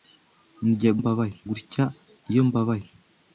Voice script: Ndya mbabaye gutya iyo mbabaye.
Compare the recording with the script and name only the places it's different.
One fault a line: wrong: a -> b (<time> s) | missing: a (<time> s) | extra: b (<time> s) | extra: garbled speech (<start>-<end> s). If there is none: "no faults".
no faults